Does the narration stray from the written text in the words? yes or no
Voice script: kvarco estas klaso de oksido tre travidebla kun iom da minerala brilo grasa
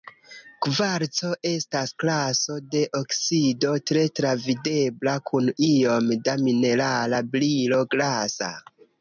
no